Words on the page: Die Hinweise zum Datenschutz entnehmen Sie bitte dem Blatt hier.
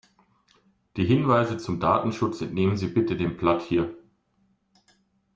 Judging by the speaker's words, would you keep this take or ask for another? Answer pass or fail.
pass